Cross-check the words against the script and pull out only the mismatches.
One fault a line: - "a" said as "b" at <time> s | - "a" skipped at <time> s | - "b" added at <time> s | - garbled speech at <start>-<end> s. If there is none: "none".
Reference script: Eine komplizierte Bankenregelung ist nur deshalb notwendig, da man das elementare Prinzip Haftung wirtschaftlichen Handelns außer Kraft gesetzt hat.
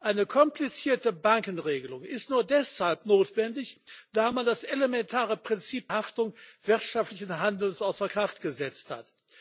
none